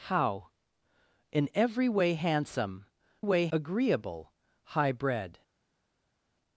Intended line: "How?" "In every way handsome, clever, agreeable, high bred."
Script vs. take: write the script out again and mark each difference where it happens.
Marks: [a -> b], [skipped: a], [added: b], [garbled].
"How?" "In every way handsome, [clever, -> way] agreeable, high bred."